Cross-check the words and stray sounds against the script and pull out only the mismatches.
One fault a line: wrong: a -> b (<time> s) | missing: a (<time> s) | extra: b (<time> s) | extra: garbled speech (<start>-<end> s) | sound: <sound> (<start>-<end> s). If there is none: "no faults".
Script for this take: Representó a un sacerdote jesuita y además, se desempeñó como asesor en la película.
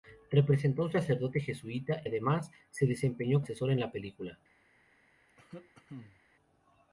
missing: y (2.0 s)
missing: como (3.4 s)
sound: cough (5.3-6.2 s)